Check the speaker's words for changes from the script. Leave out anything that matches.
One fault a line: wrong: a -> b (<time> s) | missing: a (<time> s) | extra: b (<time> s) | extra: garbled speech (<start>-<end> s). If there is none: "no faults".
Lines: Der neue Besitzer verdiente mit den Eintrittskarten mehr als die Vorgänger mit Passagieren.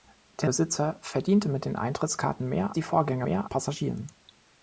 missing: neue (0.5 s)
missing: als (2.8 s)
wrong: mit -> mehr (3.2 s)